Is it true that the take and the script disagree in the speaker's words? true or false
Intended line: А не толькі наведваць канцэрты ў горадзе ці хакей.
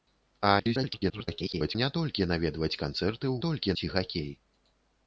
true